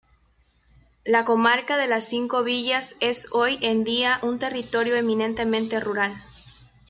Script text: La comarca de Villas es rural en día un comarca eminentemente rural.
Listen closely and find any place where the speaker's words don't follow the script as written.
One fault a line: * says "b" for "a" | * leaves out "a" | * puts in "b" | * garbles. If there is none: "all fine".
* puts in "las Cinco"
* says "hoy" for "rural"
* says "territorio" for "comarca"